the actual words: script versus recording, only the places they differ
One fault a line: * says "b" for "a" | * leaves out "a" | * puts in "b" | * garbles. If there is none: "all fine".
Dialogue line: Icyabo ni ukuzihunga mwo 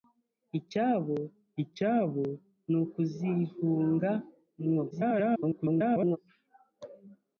* puts in "icyabo"
* garbles